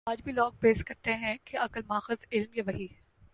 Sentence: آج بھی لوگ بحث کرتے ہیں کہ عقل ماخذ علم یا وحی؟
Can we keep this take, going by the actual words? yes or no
yes